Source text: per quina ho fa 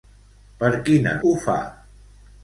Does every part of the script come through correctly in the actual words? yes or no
yes